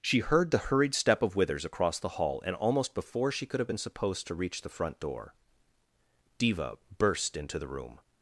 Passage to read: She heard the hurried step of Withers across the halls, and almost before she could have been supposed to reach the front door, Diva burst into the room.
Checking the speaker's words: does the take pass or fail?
fail